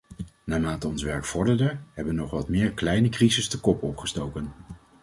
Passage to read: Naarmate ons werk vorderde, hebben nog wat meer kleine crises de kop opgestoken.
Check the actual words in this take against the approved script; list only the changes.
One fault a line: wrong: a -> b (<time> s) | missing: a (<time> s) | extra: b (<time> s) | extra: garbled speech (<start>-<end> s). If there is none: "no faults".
no faults